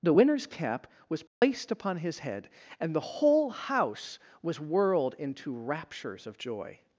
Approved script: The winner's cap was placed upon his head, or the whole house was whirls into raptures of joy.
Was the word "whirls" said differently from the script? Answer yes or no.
yes